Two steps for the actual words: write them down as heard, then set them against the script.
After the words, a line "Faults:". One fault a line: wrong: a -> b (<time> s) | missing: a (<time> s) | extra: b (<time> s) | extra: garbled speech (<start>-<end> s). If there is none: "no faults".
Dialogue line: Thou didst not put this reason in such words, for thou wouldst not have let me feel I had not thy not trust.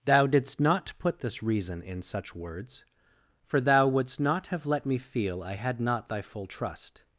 Thou didst not put this reason in such words, for thou wouldst not have let me feel I had not thy full trust.
Faults:
wrong: not -> full (6.2 s)